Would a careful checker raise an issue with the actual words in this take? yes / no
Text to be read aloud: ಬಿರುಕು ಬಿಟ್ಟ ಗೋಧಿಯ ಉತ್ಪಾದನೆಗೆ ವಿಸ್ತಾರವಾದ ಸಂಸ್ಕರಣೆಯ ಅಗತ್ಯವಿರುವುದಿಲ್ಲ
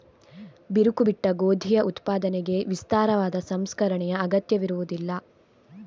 no